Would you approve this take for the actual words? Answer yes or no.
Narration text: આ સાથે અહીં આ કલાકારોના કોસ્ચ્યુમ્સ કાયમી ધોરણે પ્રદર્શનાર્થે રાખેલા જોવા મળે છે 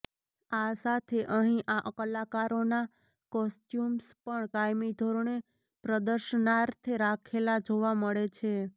no